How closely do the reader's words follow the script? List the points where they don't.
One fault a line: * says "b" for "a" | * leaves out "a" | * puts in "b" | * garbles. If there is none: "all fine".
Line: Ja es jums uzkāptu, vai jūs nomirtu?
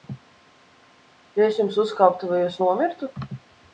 all fine